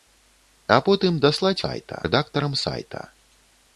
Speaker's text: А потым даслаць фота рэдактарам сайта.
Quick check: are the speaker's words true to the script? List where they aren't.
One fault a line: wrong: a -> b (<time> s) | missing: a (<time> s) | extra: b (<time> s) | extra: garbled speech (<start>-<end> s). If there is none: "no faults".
wrong: фота -> сайта (1.6 s)